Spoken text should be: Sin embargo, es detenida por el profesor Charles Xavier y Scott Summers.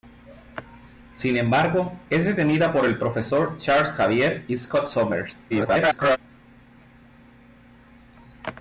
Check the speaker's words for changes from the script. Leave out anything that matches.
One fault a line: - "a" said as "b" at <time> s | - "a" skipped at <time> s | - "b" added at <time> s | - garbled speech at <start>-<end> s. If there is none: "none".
- garbled speech at 5.5-6.2 s